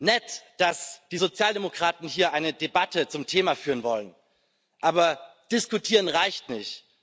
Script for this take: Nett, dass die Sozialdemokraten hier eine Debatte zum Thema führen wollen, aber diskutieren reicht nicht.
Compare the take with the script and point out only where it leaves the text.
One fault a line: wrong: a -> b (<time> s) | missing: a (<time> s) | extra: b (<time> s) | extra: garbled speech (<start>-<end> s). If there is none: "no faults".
no faults